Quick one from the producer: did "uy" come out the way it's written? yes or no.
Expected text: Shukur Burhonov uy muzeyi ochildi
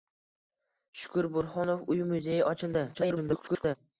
yes